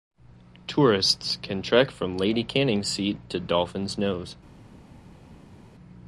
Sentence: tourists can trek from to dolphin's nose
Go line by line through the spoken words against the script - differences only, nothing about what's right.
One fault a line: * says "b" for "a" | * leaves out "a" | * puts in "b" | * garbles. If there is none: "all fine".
* puts in "lady canning's seat"